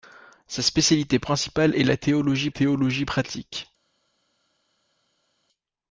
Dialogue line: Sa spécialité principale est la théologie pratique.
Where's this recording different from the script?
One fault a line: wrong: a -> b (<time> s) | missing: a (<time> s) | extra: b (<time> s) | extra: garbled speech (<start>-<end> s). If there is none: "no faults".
extra: théologie (2.5 s)